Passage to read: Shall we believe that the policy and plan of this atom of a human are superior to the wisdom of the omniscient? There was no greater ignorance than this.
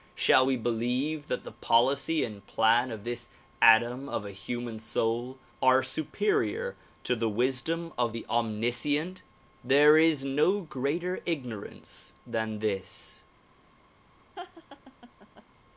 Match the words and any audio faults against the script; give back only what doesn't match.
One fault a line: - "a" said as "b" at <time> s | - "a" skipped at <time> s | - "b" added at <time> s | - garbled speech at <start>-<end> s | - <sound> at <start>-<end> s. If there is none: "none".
- "soul" added at 4.8 s
- "was" said as "is" at 10.0 s
- laugh at 14.4-15.5 s